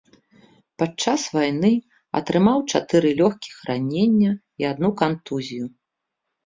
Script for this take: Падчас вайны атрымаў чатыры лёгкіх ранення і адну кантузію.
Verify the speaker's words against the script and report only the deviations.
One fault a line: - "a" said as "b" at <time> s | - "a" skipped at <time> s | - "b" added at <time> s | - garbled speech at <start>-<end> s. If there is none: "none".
none